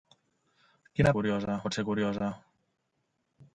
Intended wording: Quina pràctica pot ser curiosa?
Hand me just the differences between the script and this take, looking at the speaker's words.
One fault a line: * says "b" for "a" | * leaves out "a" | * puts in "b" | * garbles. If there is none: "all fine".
* says "curiosa" for "pràctica"